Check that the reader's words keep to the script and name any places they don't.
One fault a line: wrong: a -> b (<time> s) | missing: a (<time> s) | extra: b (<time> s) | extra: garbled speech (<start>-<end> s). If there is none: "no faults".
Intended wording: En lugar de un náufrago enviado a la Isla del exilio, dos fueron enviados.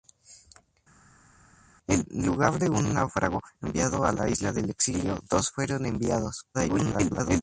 extra: garbled speech (6.5-7.4 s)